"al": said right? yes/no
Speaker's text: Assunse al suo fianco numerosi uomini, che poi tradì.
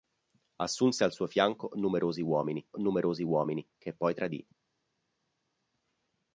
yes